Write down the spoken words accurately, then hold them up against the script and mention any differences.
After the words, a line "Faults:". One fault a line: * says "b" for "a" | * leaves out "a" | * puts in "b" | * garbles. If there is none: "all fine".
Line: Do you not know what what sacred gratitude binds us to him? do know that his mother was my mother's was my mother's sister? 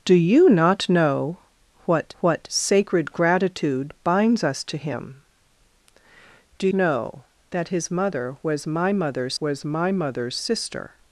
Do you not know what what sacred gratitude binds us to him? do know that his mother was my mother's was my mother's sister?
Faults:
all fine